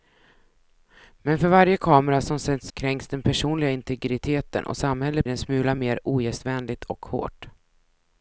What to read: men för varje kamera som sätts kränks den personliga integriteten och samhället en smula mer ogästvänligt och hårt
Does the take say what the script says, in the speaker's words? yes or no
yes